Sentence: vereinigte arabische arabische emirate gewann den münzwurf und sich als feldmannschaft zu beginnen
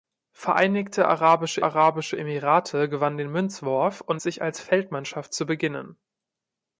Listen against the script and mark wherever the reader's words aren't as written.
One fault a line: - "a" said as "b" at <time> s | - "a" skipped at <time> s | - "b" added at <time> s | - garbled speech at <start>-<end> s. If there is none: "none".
none